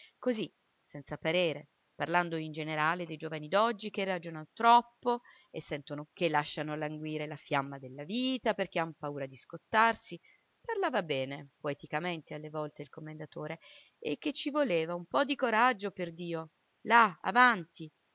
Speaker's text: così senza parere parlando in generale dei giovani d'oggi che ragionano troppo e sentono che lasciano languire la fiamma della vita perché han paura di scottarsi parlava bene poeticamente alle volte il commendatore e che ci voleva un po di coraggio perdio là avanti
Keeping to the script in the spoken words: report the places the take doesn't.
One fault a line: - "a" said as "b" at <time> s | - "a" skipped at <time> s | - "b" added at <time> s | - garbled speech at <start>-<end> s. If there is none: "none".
none